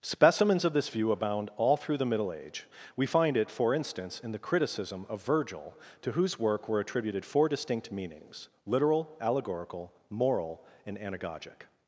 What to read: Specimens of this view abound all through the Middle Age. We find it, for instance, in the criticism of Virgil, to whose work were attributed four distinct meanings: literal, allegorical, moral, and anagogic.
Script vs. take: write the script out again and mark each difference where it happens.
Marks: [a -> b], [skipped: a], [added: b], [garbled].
Specimens of this view abound all through the Middle Age. We find it, for instance, in the criticism of Virgil, to whose work were attributed four distinct meanings: literal, allegorical, moral, and anagogic.